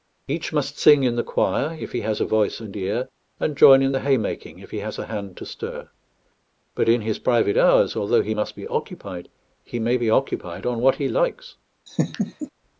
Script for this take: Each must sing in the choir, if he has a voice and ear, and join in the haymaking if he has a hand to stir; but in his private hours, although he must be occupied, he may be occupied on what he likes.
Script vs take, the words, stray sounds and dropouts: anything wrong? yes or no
yes